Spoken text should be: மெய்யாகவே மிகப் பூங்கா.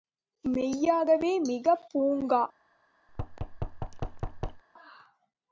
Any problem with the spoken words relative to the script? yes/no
no